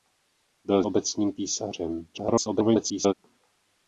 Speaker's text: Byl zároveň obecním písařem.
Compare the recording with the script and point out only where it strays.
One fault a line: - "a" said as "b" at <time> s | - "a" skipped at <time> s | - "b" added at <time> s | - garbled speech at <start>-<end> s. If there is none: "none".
- "zároveň" skipped at 0.8 s
- garbled speech at 2.1-3.1 s